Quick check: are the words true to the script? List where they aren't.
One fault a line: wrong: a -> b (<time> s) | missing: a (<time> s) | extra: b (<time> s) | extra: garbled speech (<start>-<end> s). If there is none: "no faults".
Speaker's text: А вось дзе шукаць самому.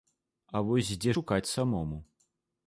no faults